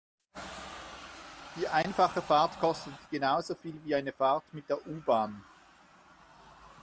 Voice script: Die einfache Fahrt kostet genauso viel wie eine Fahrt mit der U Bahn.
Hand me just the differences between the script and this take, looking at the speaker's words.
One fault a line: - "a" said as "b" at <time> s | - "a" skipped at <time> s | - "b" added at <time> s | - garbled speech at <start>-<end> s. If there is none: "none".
none